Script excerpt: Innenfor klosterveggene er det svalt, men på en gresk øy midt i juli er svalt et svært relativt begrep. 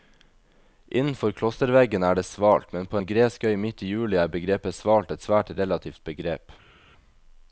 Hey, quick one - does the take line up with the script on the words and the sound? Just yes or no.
no